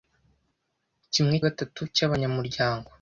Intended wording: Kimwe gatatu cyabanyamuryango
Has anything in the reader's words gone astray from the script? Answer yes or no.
no